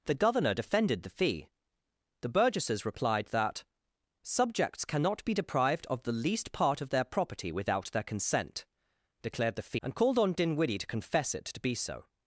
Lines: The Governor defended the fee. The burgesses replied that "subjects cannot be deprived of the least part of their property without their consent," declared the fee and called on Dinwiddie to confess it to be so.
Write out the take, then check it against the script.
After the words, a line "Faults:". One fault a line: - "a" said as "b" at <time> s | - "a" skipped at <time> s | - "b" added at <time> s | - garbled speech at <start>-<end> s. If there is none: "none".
The Governor defended the fee. The burgesses replied that "subjects cannot be deprived of the least part of their property without their consent," declared the fee and called on Dinwiddie to confess it to be so.
Faults:
none